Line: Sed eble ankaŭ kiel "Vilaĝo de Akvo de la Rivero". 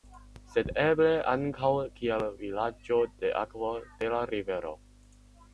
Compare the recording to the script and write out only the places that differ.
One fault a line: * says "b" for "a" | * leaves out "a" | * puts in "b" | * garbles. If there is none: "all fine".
all fine